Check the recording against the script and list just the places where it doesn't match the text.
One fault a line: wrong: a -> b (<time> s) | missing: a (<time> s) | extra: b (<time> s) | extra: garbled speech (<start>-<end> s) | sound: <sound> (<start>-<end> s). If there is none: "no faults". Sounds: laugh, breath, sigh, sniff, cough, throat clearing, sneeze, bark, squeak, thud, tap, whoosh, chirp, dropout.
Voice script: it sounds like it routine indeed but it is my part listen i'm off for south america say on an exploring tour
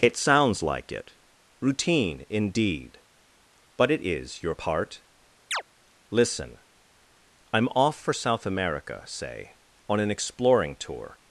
wrong: my -> your (4.4 s)
sound: chirp (5.5-5.6 s)